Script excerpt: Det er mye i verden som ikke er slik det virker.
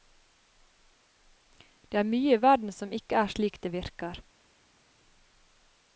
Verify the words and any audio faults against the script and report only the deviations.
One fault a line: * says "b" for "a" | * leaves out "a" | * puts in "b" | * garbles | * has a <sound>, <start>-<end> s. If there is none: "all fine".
all fine